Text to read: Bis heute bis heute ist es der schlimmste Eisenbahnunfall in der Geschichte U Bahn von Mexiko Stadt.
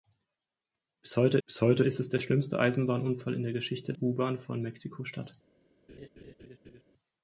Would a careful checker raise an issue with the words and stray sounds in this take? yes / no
yes